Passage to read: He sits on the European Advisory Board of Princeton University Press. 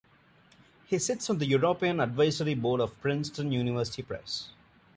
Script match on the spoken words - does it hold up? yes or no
yes